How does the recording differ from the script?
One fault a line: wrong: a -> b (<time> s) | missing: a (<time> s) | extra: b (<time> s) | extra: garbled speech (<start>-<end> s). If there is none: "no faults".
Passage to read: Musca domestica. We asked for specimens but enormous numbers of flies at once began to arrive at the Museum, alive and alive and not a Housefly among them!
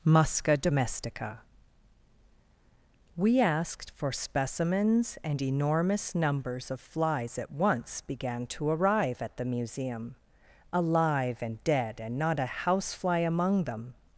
wrong: but -> and (5.2 s)
wrong: alive -> dead (11.6 s)